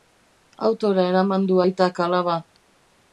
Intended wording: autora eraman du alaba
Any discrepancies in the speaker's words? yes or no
yes